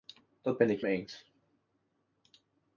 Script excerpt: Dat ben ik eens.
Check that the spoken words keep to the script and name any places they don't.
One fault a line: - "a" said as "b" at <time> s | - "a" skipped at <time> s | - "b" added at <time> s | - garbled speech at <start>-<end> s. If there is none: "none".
none